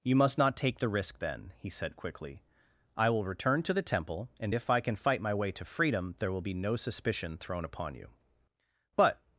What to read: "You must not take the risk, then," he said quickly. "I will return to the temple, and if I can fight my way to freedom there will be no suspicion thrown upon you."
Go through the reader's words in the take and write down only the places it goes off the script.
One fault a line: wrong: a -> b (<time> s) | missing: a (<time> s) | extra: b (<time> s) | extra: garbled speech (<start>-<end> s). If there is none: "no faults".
extra: But (9.0 s)